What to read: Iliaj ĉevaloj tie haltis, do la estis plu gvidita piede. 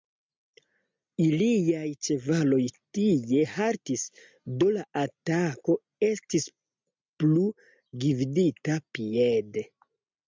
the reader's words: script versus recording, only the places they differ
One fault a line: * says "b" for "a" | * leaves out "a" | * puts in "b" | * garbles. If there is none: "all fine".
* puts in "atako"